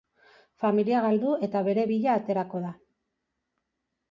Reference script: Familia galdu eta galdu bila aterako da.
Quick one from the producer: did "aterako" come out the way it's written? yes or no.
yes